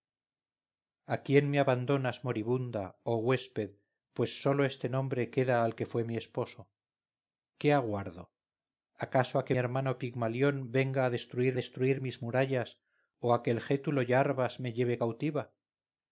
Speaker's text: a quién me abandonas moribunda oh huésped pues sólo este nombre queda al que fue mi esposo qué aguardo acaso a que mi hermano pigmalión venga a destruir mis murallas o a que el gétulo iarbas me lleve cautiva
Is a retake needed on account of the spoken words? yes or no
yes